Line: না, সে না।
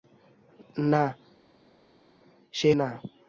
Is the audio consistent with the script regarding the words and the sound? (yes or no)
yes